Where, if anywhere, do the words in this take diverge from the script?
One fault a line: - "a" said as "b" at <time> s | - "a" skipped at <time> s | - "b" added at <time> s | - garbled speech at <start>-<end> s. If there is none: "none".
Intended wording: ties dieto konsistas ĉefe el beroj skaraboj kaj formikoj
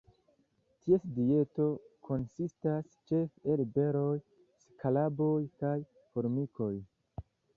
none